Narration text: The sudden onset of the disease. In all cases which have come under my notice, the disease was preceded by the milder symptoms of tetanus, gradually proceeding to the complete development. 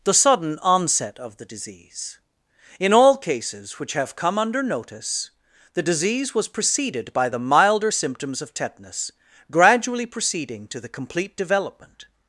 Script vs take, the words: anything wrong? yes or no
yes